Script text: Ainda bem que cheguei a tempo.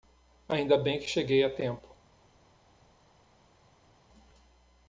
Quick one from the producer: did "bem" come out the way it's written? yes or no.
yes